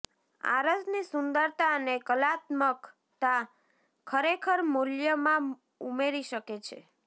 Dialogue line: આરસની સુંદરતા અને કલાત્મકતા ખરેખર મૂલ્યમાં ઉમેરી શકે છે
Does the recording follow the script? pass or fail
pass